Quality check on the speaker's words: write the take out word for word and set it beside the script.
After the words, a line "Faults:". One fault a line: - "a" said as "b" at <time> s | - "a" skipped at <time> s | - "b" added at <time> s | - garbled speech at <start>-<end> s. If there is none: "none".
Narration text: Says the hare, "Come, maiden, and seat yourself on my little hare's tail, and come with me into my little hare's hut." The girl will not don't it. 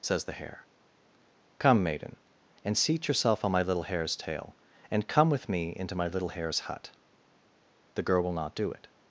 Says the hare, "Come, maiden, and seat yourself on my little hare's tail, and come with me into my little hare's hut." The girl will not do it.
Faults:
- "don't" said as "do" at 8.6 s